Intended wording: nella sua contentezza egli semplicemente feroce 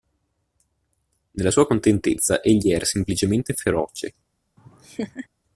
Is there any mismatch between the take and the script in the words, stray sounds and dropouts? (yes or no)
yes